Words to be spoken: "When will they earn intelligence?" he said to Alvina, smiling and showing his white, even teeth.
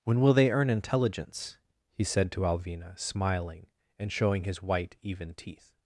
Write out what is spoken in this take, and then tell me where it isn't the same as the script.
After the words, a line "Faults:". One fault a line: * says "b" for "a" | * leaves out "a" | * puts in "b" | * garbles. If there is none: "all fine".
"When will they earn intelligence?" he said to Alvina, smiling and showing his white, even teeth.
Faults:
all fine